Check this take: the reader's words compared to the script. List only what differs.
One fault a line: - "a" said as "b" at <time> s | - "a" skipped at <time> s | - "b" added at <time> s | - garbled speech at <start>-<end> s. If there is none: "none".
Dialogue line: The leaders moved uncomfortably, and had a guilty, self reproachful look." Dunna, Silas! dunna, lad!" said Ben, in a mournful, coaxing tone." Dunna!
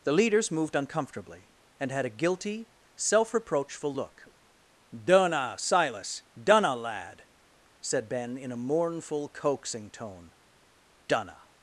none